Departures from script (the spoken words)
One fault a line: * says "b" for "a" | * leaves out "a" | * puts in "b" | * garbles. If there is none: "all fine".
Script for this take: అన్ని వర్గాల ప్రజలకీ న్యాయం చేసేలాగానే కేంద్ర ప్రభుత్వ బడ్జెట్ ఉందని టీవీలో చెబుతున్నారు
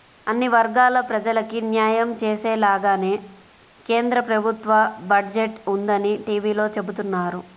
all fine